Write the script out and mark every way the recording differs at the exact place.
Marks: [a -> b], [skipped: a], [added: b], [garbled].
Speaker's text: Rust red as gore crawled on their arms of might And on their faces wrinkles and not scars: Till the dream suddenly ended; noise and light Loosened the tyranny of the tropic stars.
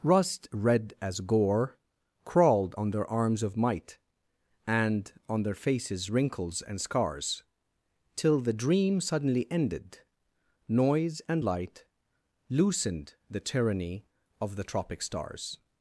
Rust red as gore crawled on their arms of might And on their faces wrinkles and [skipped: not] scars: Till the dream suddenly ended; noise and light Loosened the tyranny of the tropic stars.